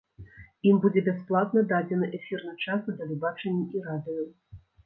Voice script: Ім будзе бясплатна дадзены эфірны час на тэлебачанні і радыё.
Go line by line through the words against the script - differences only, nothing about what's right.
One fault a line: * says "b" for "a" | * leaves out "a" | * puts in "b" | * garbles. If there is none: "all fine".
all fine